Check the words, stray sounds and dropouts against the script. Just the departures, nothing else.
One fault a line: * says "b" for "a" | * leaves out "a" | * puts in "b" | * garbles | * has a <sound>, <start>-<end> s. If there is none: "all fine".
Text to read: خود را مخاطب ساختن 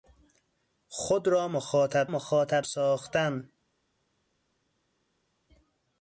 * puts in "مخاطب"